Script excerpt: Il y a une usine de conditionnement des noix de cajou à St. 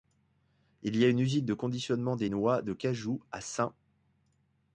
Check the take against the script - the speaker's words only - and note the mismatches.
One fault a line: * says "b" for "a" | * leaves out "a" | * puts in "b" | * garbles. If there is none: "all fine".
all fine